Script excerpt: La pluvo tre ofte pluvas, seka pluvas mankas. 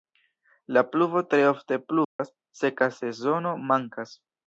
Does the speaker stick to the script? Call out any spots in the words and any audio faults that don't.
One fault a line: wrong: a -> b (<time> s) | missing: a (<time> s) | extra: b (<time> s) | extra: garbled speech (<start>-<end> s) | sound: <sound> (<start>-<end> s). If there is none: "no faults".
sound: dropout (2.0-2.2 s)
wrong: pluvas -> sezono (3.0 s)